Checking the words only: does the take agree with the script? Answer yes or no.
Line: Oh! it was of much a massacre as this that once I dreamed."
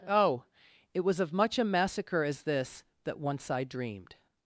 yes